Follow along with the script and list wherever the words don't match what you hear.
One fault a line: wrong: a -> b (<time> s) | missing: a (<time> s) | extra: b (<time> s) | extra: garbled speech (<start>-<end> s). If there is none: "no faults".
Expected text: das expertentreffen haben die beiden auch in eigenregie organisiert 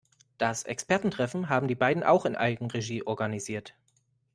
no faults